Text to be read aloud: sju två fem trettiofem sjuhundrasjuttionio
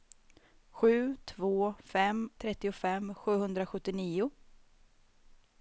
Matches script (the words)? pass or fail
pass